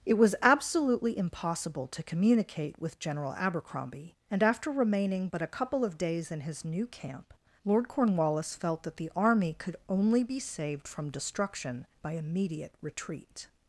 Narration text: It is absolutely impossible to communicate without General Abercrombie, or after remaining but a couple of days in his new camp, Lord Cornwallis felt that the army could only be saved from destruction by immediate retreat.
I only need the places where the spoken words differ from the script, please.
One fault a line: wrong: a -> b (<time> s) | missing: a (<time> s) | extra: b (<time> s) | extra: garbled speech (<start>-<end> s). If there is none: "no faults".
wrong: is -> was (0.2 s)
wrong: without -> with (2.8 s)
wrong: or -> and (4.3 s)